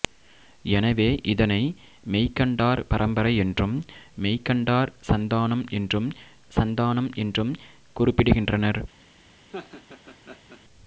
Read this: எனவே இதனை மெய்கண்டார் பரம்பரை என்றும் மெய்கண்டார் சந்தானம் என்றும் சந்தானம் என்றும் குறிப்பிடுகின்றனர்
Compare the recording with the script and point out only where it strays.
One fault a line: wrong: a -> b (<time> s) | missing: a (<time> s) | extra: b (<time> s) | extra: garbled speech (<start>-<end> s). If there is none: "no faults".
no faults